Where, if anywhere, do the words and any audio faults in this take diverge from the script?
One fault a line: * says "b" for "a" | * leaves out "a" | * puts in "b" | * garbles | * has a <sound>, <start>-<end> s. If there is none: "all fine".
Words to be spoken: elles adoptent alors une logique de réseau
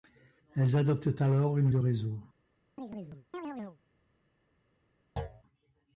* leaves out "logique"
* has a chirp, 2.8-3.8 s
* has a thud, 5.2-5.4 s